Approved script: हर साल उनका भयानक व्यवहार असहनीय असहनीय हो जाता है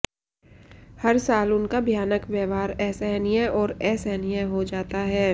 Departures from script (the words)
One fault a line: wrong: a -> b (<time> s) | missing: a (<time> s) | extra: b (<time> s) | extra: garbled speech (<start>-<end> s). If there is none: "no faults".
extra: और (3.6 s)